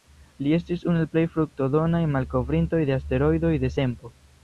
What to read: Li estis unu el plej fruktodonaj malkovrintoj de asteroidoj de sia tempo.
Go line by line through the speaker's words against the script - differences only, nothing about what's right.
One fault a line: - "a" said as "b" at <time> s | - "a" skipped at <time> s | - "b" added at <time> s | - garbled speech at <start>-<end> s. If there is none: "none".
- "sia" skipped at 3.7 s